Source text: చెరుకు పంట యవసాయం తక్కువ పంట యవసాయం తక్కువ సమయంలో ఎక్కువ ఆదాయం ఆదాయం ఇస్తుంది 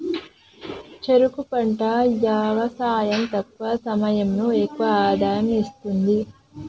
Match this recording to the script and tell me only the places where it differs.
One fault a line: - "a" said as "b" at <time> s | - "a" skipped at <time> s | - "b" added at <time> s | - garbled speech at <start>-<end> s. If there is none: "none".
- "పంట యవసాయం తక్కువ" skipped at 3.8 s
- "ఆదాయం" skipped at 5.5 s